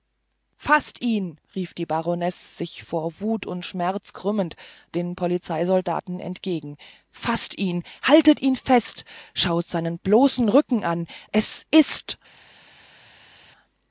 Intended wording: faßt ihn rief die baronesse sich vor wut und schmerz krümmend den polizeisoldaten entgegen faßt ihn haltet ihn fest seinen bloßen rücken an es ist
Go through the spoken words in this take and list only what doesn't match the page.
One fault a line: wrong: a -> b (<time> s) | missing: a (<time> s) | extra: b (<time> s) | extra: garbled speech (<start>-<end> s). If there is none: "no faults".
extra: schaut (9.3 s)